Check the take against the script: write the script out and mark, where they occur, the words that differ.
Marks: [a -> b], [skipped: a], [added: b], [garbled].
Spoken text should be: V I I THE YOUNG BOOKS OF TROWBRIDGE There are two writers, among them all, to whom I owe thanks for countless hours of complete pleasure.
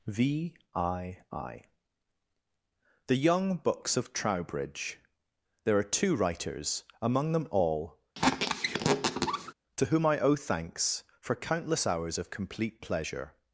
V I I THE YOUNG BOOKS OF TROWBRIDGE There are two writers, among them all, to whom I owe thanks for countless hours of complete pleasure.